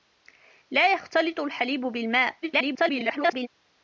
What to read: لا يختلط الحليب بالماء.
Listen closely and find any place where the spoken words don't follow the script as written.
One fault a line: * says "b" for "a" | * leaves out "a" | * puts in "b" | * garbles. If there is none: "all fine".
* garbles